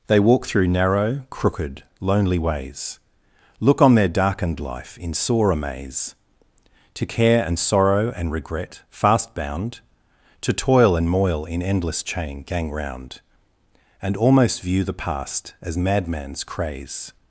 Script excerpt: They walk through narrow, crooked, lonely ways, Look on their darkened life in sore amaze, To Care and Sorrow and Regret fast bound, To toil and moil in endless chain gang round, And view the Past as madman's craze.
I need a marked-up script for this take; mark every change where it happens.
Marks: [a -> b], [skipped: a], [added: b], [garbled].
They walk through narrow, crooked, lonely ways, Look on their darkened life in sore amaze, To Care and Sorrow and Regret fast bound, To toil and moil in endless chain gang round, And [added: almost] view the Past as madman's craze.